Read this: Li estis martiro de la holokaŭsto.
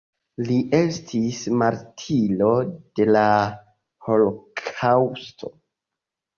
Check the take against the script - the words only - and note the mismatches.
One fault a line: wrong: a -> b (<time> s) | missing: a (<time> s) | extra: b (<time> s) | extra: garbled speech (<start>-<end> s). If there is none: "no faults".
no faults